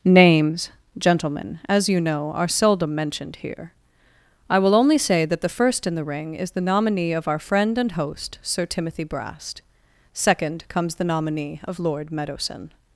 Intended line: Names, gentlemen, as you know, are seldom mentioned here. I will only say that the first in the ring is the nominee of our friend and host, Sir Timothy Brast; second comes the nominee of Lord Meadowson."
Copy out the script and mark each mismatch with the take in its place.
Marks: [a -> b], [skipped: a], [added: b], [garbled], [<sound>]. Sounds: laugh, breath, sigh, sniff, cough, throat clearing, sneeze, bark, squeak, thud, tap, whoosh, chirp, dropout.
Names, gentlemen, as you know, are seldom mentioned here. I will only say that the first in the ring is the nominee of our friend and host, Sir Timothy Brast; second comes the nominee of Lord Meadowson."